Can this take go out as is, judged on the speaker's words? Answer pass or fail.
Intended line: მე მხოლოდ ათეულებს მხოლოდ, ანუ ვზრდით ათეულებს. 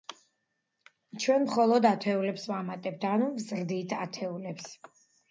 fail